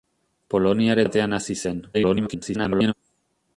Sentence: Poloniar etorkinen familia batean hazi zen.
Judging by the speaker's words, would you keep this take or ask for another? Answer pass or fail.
fail